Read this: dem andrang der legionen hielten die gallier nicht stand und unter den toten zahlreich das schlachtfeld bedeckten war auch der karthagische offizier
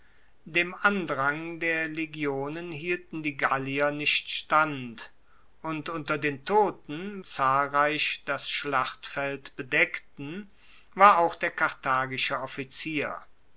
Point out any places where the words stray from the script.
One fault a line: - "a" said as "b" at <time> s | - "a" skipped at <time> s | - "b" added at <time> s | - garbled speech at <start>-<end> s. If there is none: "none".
none